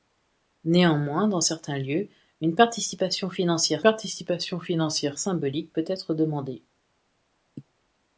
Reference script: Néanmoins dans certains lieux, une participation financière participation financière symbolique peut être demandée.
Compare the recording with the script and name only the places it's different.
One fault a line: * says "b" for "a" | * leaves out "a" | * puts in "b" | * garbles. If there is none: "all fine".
all fine